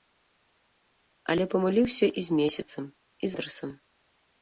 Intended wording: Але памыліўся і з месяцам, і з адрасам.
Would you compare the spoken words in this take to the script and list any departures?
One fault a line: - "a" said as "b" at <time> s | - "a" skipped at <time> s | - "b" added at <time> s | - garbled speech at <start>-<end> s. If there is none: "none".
- "з" skipped at 3.3 s